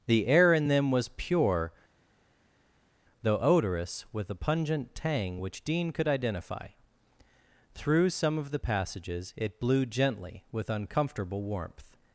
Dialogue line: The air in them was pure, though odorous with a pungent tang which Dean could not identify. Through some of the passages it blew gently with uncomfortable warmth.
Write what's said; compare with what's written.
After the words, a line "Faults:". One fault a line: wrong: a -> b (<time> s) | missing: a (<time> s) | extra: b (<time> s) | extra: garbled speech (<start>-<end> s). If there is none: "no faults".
The air in them was pure, though odorous with a pungent tang which Dean could identify. Through some of the passages it blew gently with uncomfortable warmth.
Faults:
missing: not (6.1 s)